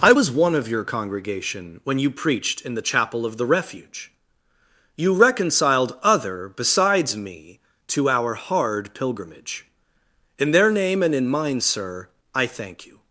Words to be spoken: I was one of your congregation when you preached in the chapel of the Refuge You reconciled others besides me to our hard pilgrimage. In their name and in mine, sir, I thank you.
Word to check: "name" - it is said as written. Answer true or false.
true